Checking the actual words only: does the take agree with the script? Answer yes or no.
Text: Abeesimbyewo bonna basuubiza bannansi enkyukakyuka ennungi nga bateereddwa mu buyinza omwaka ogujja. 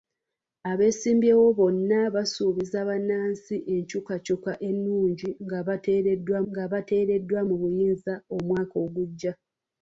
no